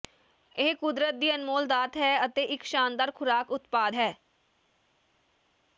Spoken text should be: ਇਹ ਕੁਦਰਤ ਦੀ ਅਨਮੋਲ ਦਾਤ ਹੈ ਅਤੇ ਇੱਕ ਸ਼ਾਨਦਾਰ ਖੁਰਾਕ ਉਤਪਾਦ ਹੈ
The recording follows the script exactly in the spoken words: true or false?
true